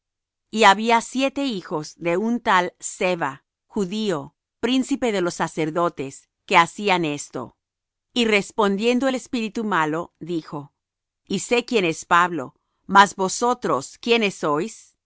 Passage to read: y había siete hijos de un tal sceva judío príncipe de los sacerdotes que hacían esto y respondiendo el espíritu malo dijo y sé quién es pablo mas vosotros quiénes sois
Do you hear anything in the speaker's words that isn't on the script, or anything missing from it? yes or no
no